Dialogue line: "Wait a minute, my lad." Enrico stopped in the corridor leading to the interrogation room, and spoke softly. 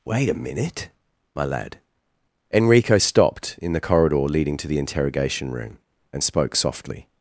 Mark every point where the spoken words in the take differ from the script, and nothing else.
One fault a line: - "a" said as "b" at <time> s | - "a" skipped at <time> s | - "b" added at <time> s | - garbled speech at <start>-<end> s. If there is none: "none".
none